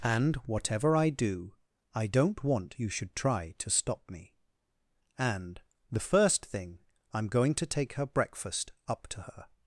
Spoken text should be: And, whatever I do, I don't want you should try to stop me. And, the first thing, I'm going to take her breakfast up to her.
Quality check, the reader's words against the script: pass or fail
pass